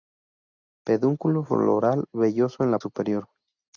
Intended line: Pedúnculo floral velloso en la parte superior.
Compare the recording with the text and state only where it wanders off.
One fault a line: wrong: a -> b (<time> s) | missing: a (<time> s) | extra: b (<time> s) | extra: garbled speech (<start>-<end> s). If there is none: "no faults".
missing: parte (2.8 s)